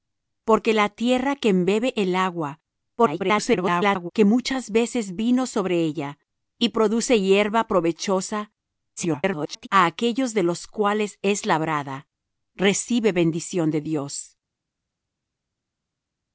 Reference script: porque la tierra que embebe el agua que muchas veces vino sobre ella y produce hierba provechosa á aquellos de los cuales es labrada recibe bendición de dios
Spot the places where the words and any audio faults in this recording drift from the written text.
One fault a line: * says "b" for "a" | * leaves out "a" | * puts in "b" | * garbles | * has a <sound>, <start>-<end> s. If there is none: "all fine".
* garbles
* garbles